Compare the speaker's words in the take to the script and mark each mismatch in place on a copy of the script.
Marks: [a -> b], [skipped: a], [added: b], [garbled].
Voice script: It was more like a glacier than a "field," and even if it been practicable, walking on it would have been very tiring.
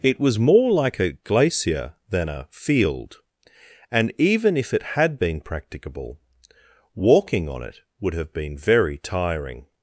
It was more like a glacier than a "field," and even if it [added: had] been practicable, walking on it would have been very tiring.